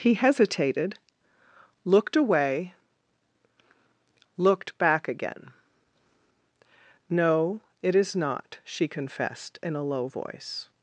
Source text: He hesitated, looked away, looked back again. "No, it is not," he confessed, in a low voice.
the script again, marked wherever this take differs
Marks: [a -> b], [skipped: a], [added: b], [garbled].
He hesitated, looked away, looked back again. "No, it is not," [he -> she] confessed, in a low voice.